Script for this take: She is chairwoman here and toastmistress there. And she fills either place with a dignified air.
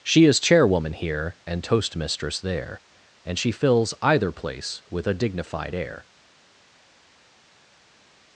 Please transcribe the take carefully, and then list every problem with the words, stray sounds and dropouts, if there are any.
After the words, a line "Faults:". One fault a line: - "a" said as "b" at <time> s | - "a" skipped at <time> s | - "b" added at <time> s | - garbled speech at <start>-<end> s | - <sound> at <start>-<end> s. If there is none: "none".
She is chairwoman here and toastmistress there. And she fills either place with a dignified air.
Faults:
none